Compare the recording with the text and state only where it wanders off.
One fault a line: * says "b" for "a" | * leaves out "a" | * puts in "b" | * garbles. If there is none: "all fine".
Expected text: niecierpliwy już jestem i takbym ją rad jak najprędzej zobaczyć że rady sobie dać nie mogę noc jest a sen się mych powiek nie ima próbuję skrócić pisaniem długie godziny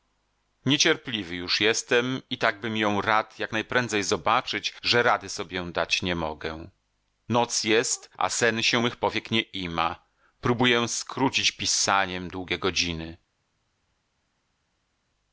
all fine